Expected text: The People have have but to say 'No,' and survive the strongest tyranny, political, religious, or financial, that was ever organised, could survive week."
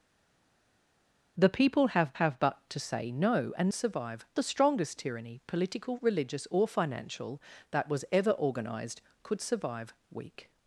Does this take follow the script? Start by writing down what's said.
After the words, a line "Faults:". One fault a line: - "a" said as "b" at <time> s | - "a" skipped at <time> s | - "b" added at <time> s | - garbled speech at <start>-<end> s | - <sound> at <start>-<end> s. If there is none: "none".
The People have have but to say 'No,' and survive the strongest tyranny, political, religious, or financial, that was ever organised, could survive week."
Faults:
none